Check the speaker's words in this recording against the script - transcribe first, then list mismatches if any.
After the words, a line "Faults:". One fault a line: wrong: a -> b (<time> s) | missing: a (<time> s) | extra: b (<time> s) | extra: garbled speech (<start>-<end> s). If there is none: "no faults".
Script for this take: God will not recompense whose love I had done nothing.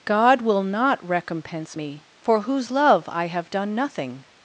God will not recompense me, for whose love I have done nothing.
Faults:
extra: me for (1.7 s)
wrong: had -> have (3.3 s)